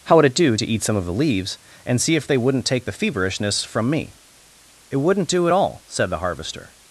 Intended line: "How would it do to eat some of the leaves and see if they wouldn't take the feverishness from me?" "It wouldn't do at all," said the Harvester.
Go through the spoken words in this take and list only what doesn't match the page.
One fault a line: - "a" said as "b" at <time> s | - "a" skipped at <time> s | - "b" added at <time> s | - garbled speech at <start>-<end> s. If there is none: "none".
none